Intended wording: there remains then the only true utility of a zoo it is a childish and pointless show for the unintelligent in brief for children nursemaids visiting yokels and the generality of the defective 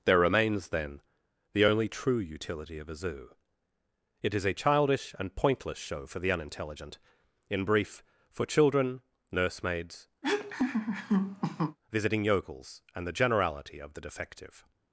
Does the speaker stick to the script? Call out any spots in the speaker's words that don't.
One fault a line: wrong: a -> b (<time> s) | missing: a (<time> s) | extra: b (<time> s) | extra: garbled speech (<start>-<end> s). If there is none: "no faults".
no faults